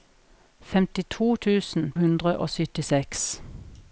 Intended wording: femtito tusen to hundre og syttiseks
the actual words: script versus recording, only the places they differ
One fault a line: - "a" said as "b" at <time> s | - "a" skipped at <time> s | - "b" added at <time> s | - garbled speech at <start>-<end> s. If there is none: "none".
- "to" skipped at 1.9 s